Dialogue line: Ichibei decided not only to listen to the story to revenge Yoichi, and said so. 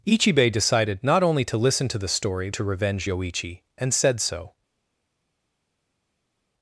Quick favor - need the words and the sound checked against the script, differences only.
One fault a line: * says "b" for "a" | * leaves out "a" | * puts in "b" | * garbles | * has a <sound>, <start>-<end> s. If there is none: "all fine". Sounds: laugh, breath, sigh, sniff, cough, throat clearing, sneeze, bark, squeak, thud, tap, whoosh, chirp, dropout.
all fine